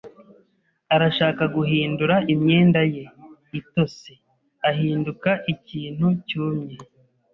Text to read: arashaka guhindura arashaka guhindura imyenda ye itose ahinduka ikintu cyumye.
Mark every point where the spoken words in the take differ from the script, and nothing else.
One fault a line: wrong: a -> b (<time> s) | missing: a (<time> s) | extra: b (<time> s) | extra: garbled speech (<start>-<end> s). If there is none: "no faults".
missing: arashaka guhindura (2.1 s)